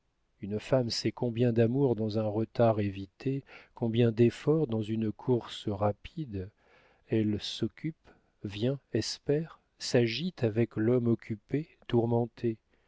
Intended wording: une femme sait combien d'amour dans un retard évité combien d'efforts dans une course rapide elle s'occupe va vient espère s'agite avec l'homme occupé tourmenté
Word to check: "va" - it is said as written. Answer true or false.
false